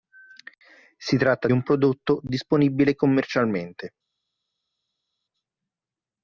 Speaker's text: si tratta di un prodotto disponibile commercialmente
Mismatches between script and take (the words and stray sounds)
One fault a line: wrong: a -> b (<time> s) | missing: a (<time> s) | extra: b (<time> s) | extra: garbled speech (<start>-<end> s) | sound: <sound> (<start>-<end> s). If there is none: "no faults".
missing: di (1.5 s)